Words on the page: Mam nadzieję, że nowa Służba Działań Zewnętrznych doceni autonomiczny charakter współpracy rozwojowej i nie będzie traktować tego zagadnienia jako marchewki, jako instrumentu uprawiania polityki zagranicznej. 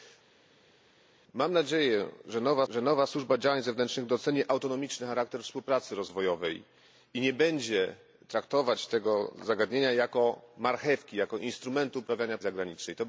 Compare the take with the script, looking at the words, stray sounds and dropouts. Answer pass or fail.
fail